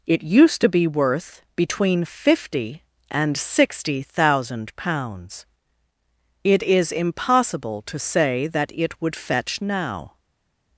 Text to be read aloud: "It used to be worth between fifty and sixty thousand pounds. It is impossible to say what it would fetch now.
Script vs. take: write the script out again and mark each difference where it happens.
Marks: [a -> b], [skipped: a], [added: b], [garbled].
"It used to be worth between fifty and sixty thousand pounds. It is impossible to say [what -> that] it would fetch now.